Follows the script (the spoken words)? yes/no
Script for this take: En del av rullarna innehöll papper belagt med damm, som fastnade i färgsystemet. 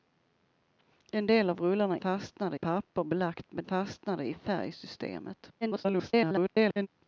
no